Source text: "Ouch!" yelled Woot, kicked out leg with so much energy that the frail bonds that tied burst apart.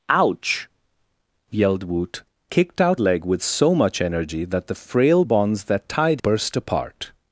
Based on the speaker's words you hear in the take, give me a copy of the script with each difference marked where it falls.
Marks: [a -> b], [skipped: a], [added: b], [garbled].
"Ouch!" yelled Woot, kicked out leg with so much energy that the frail bonds that tied burst apart.